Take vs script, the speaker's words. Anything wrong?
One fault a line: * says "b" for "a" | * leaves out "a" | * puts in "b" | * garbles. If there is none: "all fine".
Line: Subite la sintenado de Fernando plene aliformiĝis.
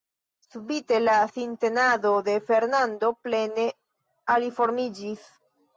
all fine